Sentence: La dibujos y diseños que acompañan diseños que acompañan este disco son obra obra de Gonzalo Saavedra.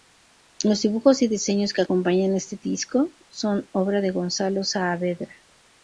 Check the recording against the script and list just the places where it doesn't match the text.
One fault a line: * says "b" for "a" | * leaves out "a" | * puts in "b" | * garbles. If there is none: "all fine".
* says "Los" for "La"
* leaves out "diseños que acompañan"
* leaves out "obra"